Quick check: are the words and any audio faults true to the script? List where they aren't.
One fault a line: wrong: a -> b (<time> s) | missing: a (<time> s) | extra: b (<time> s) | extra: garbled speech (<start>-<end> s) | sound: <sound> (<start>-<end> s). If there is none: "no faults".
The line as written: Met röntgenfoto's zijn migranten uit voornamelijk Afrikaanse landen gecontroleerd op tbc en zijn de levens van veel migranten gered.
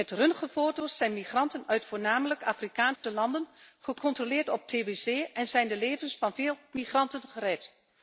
sound: dropout (3.0-3.0 s)